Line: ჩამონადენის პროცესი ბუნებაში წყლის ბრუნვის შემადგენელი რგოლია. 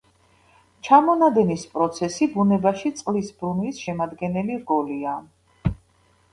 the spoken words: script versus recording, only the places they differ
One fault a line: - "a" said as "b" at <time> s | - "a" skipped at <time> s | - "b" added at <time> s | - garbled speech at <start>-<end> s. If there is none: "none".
none